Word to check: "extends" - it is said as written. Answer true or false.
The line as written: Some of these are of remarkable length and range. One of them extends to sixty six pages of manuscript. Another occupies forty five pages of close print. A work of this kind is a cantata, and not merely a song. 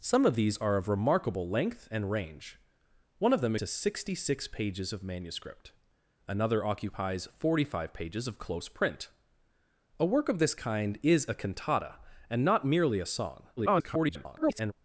false